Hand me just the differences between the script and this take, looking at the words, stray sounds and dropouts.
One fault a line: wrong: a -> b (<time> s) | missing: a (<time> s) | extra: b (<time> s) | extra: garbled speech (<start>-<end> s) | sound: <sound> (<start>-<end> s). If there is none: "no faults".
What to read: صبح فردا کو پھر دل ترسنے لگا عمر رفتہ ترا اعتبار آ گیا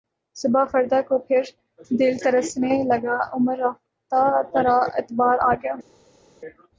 no faults